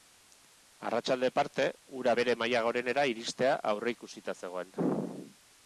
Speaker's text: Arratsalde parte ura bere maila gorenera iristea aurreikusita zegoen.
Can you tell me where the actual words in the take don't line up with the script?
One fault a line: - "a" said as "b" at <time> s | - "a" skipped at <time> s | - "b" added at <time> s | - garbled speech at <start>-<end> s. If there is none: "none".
none